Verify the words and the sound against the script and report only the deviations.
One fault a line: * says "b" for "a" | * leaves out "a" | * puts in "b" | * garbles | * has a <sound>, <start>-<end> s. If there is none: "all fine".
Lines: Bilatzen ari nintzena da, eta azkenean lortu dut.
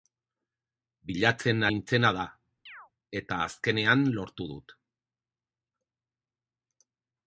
* leaves out "ari"
* has a chirp, 2.7-2.9 s